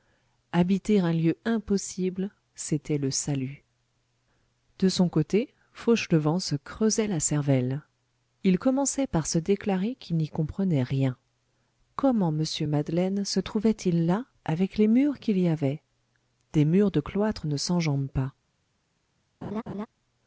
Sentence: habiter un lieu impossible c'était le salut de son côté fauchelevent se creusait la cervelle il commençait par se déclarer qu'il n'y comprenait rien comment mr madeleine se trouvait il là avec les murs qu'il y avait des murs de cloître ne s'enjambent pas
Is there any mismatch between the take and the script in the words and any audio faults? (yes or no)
yes